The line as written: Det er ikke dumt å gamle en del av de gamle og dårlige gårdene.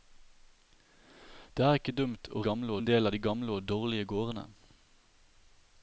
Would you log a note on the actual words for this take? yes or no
no